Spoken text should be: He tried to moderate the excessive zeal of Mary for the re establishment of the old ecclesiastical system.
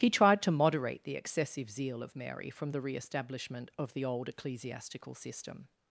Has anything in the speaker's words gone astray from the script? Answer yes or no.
yes